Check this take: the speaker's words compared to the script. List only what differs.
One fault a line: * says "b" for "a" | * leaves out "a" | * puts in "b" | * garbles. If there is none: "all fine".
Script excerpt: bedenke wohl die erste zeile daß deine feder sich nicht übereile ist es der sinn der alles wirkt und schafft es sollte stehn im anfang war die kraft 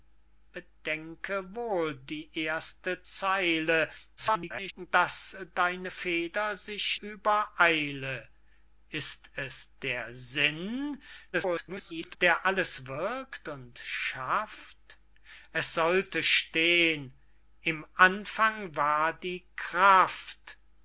* garbles
* leaves out "nicht"
* garbles